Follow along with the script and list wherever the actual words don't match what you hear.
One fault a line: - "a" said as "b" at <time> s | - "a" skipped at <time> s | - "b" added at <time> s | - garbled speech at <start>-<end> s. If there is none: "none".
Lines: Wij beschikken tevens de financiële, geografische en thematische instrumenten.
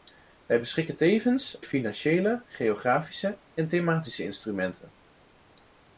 none